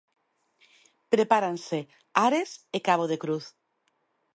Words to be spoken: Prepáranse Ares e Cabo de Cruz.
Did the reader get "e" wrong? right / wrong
right